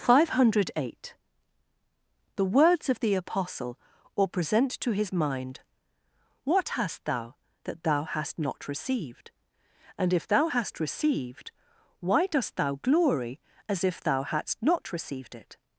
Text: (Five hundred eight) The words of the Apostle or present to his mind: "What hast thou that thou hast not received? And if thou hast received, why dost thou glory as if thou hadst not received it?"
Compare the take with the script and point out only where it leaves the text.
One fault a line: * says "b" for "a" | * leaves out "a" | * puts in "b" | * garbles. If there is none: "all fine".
all fine